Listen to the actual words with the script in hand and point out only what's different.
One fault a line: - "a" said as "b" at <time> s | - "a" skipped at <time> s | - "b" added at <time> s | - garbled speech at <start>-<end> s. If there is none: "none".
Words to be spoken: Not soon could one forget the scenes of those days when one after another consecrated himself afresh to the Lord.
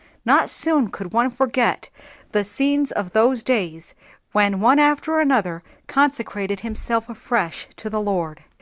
none